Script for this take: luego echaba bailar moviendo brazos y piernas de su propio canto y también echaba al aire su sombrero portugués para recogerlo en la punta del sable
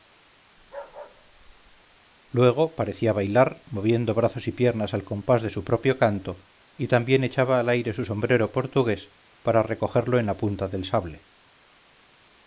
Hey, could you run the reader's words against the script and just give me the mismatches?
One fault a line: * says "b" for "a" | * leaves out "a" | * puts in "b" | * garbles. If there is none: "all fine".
* says "parecía" for "echaba"
* puts in "al compás"